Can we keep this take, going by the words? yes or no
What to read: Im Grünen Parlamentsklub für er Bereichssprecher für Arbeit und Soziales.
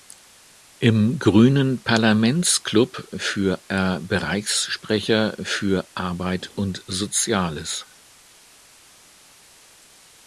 yes